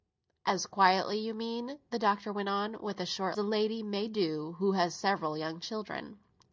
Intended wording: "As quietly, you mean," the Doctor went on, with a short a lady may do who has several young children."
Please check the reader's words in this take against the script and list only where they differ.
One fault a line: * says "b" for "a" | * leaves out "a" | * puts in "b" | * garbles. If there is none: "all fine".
all fine